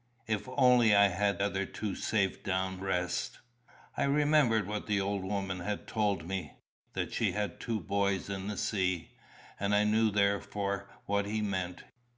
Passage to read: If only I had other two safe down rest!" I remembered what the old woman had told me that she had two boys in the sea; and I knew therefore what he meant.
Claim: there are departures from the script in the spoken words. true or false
false